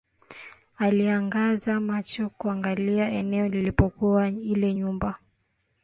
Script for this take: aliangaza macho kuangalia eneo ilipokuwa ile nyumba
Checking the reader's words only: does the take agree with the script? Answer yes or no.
yes